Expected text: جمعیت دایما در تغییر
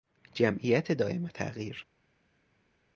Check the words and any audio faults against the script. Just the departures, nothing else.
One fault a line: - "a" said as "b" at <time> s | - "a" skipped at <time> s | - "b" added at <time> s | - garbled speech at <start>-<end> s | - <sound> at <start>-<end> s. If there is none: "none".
- "در" skipped at 1.3 s